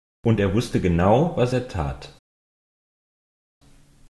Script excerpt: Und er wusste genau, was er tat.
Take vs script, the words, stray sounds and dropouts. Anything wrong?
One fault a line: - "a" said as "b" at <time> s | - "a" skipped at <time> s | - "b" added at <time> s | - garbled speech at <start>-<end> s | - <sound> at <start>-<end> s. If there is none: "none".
none